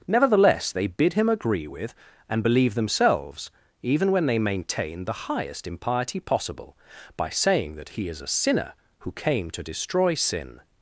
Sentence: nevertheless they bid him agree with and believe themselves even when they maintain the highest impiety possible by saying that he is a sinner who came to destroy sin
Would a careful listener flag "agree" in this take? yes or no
no